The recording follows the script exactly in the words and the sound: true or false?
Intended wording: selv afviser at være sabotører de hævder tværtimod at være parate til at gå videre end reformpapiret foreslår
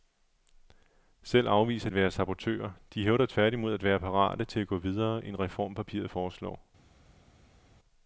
true